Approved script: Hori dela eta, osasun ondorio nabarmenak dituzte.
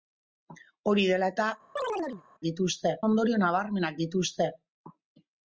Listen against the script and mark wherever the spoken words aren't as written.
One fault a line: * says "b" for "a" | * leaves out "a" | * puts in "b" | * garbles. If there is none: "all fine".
* says "dituzte" for "osasun"